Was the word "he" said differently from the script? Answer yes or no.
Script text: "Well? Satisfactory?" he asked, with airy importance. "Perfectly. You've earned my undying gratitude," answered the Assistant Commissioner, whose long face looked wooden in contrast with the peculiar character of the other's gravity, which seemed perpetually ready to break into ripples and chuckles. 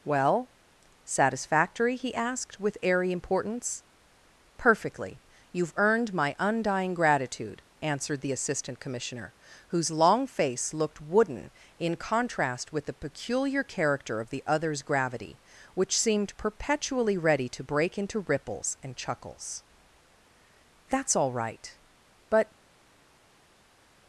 no